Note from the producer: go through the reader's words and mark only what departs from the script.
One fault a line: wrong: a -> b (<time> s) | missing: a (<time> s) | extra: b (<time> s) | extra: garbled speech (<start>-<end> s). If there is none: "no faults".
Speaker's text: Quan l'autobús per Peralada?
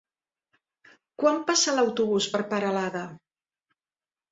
extra: passa (1.5 s)